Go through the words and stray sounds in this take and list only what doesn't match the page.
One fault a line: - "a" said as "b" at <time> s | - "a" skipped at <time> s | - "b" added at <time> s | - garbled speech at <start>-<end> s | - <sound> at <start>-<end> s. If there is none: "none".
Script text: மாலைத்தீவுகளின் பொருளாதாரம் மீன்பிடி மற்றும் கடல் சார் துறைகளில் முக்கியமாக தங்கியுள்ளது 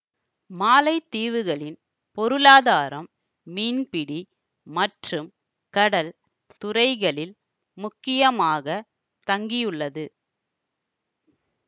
- "சார்" skipped at 6.1 s